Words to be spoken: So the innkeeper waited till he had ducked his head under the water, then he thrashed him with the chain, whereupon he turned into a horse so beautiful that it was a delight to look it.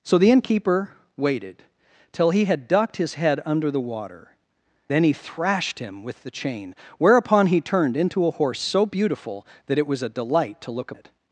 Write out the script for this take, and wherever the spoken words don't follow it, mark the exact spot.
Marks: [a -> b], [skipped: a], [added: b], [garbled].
So the innkeeper waited till he had ducked his head under the water, then he thrashed him with the chain, whereupon he turned into a horse so beautiful that it was a delight to look it.